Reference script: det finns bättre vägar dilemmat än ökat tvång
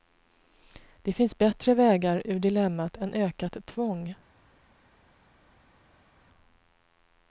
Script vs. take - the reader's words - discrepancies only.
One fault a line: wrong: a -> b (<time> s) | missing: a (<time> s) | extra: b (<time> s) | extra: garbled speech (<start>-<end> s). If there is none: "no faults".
extra: ur (2.2 s)